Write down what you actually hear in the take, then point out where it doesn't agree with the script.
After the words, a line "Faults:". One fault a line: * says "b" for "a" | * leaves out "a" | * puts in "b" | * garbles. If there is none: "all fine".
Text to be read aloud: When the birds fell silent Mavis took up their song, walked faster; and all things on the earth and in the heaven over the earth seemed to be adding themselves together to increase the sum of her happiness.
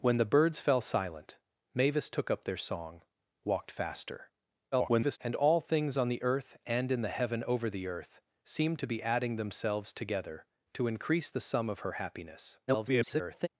When the birds fell silent Mavis took up their song, walked faster; [garbled] and all things on the earth and in the heaven over the earth seemed to be adding themselves together to increase the sum of her happiness. [garbled]
Faults:
* garbles
* garbles